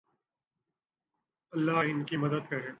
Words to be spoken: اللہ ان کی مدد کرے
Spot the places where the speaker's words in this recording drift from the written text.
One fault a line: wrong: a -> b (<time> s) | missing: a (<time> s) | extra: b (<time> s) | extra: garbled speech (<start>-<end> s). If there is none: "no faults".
no faults